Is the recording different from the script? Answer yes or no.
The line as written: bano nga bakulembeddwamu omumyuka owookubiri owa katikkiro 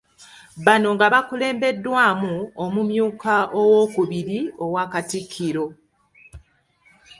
no